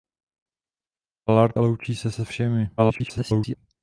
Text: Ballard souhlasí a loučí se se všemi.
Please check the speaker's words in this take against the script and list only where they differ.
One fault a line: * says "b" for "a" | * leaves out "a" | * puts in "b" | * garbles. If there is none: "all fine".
* leaves out "souhlasí"
* garbles